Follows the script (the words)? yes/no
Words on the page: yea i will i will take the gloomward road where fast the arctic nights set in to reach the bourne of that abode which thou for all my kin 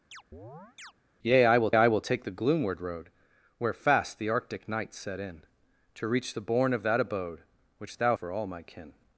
yes